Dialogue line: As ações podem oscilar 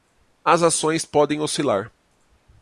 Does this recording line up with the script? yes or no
yes